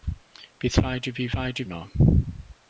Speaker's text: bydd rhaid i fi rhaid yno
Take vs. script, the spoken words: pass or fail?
pass